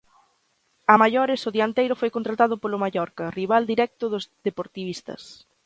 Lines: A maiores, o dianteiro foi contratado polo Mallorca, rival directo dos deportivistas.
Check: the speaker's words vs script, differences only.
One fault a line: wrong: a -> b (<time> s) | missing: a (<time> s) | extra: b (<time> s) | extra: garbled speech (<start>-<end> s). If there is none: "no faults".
no faults